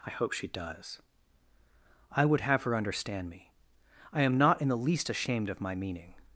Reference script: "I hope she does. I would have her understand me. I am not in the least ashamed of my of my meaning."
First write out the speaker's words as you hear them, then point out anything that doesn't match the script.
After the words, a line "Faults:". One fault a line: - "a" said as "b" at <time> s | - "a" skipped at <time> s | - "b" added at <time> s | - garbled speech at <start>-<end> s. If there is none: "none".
"I hope she does. I would have her understand me. I am not in the least ashamed of my meaning."
Faults:
- "of my" skipped at 5.8 s